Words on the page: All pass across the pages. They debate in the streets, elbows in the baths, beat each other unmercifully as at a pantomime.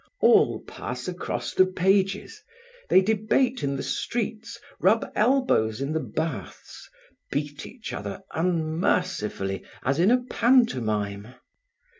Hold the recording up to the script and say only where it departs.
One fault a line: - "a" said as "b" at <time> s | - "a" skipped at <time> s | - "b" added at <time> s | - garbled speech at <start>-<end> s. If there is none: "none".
- "rub" added at 4.8 s
- "at" said as "in" at 10.0 s